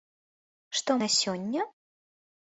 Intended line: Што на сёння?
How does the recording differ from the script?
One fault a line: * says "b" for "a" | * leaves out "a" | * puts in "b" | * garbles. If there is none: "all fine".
all fine